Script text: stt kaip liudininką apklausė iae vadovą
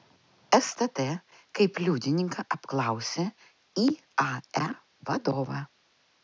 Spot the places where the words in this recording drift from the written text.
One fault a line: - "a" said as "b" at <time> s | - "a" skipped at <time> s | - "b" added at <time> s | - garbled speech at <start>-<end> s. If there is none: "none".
none